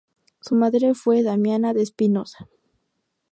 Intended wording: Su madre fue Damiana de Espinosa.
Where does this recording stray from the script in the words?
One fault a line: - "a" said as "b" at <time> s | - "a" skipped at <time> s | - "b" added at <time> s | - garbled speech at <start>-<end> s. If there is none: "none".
none